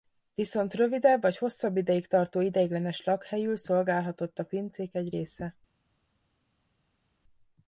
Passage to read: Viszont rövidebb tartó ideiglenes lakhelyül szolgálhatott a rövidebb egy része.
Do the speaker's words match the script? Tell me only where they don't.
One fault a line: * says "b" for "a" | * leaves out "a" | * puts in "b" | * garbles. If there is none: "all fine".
* puts in "vagy hosszabb ideig"
* says "pincék" for "rövidebb"